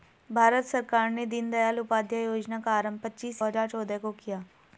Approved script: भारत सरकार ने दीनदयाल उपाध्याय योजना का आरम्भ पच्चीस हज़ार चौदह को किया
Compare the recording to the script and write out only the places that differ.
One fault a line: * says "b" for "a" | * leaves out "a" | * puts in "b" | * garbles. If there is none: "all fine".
all fine